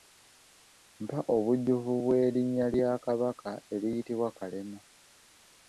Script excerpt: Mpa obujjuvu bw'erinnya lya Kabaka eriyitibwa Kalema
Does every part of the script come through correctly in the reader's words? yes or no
yes